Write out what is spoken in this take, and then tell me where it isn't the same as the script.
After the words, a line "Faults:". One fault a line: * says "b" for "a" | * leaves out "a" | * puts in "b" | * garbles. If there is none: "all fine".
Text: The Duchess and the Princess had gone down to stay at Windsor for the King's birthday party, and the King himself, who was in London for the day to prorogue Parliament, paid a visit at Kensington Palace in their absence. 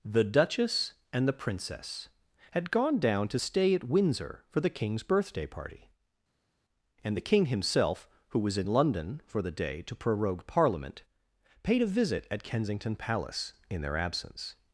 The Duchess and the Princess had gone down to stay at Windsor for the King's birthday party, and the King himself, who was in London for the day to prorogue Parliament, paid a visit at Kensington Palace in their absence.
Faults:
all fine